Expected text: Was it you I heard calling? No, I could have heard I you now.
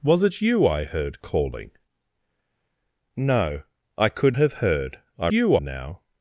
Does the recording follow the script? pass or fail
pass